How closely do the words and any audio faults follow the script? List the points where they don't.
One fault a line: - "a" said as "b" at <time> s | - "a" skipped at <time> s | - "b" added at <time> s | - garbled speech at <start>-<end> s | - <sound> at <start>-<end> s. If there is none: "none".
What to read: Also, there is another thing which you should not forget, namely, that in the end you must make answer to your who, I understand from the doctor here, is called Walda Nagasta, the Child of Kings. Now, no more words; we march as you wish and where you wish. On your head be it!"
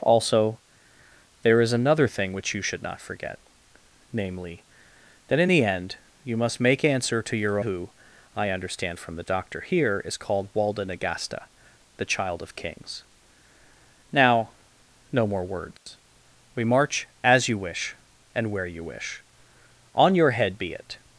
- dropout at 15.8-15.9 s